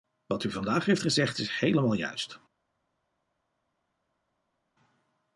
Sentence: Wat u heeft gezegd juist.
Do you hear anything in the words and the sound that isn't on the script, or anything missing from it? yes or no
yes